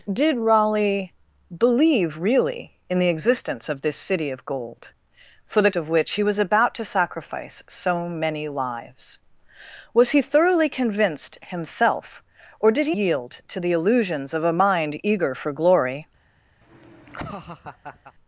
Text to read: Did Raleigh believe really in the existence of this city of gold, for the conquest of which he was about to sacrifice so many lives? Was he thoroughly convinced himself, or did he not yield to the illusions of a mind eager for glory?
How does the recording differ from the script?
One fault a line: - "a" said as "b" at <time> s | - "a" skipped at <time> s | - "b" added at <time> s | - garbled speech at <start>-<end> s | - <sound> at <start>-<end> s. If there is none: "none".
- "conquest" skipped at 5.7 s
- "not" skipped at 12.9 s
- laugh at 16.6-18.1 s